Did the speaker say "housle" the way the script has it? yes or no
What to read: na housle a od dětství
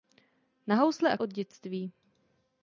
yes